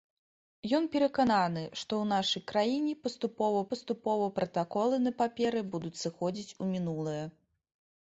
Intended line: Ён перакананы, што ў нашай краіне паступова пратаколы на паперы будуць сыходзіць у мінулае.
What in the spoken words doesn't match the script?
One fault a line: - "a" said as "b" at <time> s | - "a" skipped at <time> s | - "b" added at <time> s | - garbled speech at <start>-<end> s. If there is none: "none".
- "паступова" added at 3.7 s